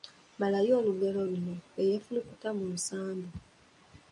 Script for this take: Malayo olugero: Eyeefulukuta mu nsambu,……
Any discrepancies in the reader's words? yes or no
yes